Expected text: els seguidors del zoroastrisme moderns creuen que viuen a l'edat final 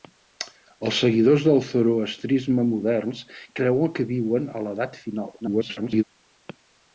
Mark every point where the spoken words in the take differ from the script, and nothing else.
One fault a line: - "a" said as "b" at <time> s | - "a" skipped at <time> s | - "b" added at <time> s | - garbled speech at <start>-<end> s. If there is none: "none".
- garbled speech at 5.4-6.0 s